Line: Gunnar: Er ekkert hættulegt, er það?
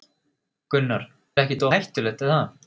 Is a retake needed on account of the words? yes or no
no